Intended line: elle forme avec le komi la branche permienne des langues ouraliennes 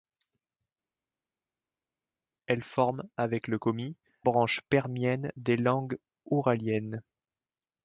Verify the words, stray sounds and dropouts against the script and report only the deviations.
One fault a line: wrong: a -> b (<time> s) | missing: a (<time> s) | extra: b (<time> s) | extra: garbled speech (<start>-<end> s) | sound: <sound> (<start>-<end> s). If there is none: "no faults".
missing: la (4.0 s)